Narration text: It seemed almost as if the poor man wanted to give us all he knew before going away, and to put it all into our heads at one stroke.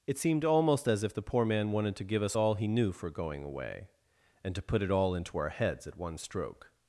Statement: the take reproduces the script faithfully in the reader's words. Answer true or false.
false